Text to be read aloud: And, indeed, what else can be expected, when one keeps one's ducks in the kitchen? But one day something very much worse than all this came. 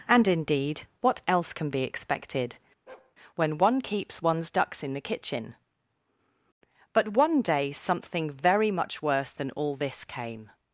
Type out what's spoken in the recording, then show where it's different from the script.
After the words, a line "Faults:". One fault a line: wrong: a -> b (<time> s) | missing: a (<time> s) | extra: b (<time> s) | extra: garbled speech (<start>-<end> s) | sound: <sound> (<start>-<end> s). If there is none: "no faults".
And, indeed, what else can be expected, when one keeps one's ducks in the kitchen? But one day something very much worse than all this came.
Faults:
sound: bark (2.9-3.2 s)